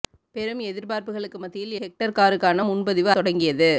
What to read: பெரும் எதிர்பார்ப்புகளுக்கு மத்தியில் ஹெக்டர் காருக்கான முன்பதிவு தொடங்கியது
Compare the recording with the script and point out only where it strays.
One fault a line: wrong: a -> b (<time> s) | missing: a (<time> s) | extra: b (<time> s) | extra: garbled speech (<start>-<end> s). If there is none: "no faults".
no faults